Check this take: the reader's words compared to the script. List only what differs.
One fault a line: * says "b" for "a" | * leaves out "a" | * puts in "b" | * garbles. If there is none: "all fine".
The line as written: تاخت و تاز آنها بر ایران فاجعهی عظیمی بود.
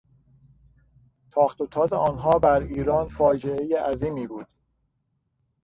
all fine